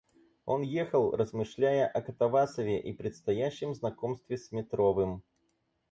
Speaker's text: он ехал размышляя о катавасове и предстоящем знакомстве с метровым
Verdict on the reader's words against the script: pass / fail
pass